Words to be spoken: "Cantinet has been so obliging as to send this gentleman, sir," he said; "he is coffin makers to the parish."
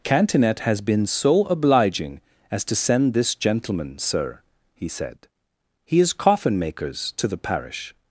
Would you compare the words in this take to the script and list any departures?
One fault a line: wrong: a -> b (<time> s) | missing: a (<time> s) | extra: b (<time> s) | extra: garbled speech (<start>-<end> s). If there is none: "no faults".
no faults